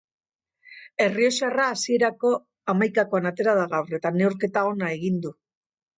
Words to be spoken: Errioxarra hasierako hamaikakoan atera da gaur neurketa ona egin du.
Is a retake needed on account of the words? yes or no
yes